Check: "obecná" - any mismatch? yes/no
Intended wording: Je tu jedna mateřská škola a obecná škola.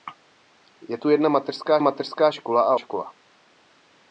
yes